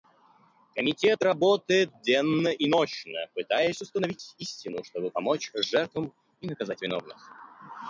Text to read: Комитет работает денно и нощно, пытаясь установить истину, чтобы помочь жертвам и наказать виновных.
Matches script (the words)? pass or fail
pass